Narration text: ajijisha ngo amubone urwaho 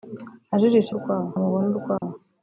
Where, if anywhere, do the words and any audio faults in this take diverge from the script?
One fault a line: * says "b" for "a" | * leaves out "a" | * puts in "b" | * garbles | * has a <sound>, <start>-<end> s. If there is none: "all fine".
* says "urwaho" for "ngo"
* has a dropout, 2.0-2.0 s